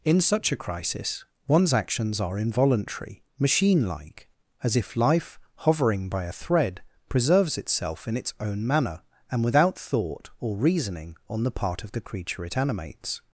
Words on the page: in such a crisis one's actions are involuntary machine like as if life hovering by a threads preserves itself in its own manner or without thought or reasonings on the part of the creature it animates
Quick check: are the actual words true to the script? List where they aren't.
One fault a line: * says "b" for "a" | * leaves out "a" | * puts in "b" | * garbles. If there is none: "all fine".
* says "thread" for "threads"
* says "and" for "or"
* says "reasoning" for "reasonings"